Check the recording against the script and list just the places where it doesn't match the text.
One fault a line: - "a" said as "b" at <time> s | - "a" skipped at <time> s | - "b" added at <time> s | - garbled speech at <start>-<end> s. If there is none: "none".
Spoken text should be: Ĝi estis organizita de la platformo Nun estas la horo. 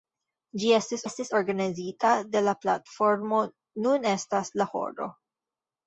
- "estis" added at 1.1 s